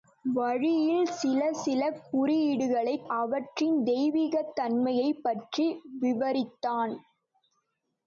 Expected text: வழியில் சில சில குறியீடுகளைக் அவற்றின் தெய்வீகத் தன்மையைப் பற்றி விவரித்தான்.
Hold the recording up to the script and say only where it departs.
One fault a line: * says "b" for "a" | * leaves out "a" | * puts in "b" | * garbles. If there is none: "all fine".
all fine